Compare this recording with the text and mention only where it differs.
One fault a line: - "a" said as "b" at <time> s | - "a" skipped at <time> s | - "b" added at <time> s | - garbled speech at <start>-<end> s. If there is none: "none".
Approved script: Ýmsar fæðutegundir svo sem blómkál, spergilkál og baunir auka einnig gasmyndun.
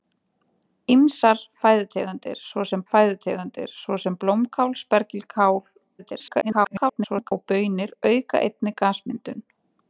- "fæðutegundir svo sem" added at 2.9 s
- garbled speech at 6.0-7.3 s